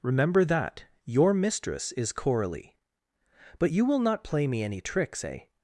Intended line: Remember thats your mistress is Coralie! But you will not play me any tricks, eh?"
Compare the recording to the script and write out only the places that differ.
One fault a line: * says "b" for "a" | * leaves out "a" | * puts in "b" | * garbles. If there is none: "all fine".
* says "that" for "thats"